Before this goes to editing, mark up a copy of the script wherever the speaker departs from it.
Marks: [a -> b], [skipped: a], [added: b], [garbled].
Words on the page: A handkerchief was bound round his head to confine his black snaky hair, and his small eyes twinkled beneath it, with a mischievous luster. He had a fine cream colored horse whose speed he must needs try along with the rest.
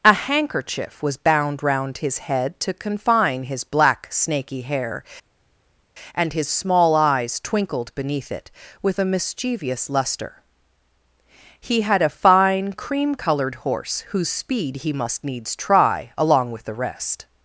A handkerchief was bound round his head to confine his black snaky hair, and his small eyes twinkled beneath it, with a mischievous luster. He had a fine cream colored horse whose speed he must needs try along with the rest.